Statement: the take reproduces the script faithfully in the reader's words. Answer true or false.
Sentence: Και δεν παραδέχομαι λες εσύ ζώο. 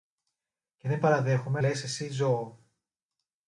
true